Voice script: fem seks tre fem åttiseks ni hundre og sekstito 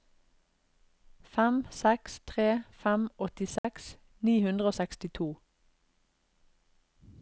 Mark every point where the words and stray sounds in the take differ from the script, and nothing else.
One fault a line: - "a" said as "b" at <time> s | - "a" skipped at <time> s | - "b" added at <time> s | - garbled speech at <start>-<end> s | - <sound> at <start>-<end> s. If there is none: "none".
- dropout at 3.6-3.6 s